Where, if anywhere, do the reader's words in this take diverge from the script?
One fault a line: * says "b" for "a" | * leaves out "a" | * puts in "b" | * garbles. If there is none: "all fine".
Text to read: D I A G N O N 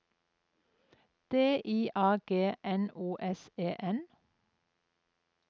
* puts in "S E"